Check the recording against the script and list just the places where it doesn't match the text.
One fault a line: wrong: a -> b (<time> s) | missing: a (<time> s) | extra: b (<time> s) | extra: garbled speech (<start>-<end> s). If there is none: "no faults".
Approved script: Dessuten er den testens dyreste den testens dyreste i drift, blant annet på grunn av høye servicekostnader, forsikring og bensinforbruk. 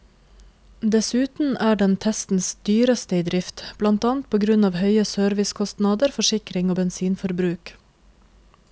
missing: den testens dyreste (3.2 s)